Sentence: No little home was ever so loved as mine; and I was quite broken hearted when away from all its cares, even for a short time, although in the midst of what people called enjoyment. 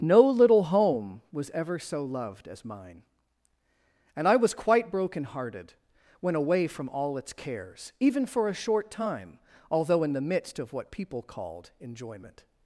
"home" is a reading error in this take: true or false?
false